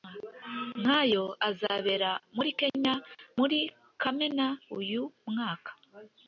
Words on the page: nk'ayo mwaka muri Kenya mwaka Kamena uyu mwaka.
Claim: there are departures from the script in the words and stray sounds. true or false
true